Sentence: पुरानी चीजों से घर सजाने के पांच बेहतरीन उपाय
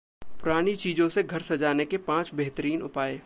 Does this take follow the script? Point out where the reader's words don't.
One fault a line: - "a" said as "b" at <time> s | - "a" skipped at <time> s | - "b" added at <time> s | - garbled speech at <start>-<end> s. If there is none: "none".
none